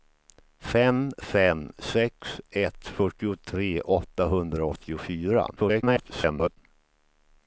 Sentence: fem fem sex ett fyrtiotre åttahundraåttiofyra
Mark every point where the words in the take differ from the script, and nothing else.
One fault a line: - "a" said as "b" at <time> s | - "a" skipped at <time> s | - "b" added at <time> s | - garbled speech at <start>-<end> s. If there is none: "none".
- garbled speech at 5.6-6.6 s